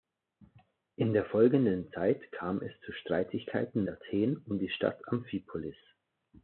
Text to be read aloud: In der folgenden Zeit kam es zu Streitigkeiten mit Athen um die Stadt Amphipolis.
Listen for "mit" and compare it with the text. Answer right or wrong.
wrong